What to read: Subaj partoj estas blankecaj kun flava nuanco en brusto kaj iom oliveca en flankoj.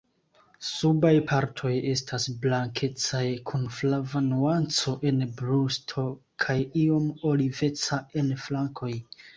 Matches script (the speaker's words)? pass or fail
pass